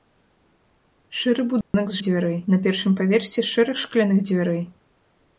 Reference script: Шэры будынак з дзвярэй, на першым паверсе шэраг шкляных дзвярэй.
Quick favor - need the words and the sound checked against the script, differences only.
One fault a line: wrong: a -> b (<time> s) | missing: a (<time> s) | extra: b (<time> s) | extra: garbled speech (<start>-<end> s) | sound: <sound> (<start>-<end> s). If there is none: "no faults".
sound: dropout (1.6-1.7 s)